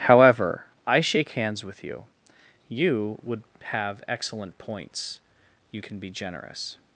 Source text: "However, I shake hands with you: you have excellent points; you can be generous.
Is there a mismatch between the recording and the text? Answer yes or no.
yes